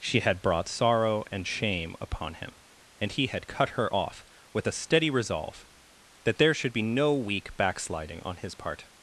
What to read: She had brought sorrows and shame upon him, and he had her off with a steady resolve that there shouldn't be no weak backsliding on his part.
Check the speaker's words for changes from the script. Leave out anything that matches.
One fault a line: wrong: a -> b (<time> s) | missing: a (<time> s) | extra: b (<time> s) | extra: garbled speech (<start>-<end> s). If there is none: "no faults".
wrong: sorrows -> sorrow (0.7 s)
extra: cut (3.5 s)
wrong: shouldn't -> should (6.5 s)